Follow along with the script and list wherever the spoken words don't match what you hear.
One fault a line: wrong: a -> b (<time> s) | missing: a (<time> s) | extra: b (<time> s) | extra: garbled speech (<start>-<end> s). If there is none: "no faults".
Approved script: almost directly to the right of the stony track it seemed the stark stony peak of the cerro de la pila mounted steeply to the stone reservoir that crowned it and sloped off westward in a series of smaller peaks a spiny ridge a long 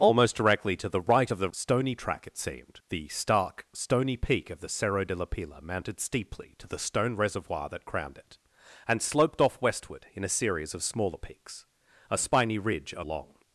no faults